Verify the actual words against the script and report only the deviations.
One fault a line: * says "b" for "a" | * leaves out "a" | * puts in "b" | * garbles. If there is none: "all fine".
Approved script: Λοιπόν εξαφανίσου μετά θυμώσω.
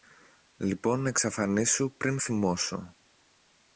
* says "πριν" for "μετά"